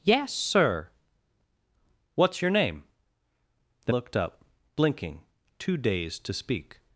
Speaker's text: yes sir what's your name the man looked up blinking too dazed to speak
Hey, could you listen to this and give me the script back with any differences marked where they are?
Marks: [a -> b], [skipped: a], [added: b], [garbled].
yes sir what's your name the [skipped: man] looked up blinking too dazed to speak